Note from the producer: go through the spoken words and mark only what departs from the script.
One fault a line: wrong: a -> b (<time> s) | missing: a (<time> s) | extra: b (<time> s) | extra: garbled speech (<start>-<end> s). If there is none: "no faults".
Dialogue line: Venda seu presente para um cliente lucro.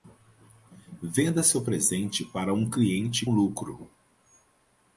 no faults